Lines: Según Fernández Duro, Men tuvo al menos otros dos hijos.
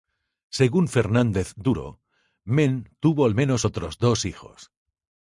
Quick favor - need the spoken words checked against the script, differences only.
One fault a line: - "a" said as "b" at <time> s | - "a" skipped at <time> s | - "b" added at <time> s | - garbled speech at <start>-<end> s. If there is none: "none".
none